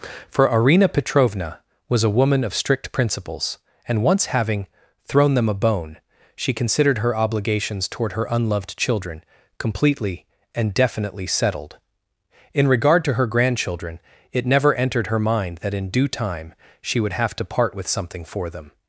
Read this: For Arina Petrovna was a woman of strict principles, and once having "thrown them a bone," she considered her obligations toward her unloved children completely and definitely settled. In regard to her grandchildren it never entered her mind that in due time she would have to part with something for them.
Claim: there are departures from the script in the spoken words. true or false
false